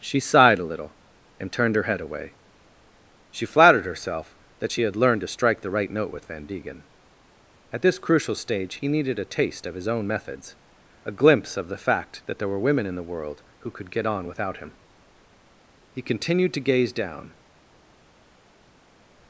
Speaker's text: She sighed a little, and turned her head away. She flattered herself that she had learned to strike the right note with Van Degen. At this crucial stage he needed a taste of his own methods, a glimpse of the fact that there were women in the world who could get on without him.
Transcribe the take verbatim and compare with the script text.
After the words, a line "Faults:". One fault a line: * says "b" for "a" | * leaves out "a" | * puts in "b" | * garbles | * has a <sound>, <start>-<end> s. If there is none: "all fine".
She sighed a little, and turned her head away. She flattered herself that she had learned to strike the right note with Van Degen. At this crucial stage he needed a taste of his own methods, a glimpse of the fact that there were women in the world who could get on without him. He continued to gaze down
Faults:
* puts in "He continued to gaze down"